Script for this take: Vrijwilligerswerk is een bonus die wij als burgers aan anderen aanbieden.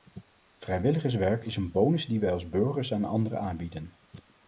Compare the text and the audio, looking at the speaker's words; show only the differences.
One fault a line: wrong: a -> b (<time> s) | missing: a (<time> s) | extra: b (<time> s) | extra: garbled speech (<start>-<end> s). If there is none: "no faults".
no faults